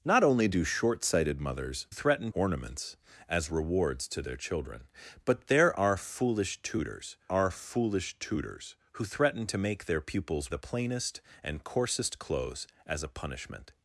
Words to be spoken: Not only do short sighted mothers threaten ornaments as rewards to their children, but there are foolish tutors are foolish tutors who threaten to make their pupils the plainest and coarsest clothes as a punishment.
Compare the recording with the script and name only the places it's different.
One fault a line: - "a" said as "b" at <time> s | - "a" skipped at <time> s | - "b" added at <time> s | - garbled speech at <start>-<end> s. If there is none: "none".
none